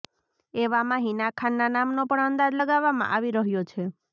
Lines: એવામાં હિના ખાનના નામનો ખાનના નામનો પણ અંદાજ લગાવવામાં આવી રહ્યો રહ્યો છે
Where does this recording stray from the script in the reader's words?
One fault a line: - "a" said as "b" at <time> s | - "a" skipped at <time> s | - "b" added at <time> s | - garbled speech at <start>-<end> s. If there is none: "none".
- "ખાનના નામનો" skipped at 2.1 s
- "રહ્યો" skipped at 3.7 s